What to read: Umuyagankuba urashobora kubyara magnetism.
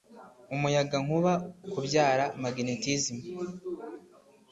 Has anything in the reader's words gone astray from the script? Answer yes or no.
yes